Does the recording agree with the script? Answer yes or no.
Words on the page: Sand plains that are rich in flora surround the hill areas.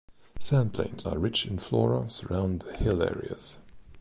no